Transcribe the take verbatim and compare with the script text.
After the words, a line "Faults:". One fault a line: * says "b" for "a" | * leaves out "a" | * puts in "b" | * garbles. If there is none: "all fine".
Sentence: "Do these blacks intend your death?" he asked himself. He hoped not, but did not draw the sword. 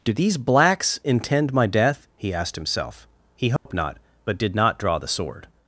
"Do these blacks intend my death?" he asked himself. He hoped not, but did not draw the sword.
Faults:
* says "my" for "your"